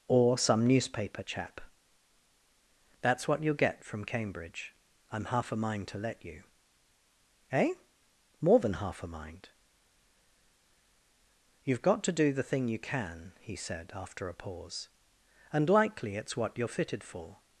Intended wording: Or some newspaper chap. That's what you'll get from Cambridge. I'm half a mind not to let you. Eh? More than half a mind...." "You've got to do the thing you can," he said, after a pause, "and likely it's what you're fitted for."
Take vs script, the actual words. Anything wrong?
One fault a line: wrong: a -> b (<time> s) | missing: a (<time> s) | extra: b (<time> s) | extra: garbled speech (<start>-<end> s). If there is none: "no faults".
missing: not (5.9 s)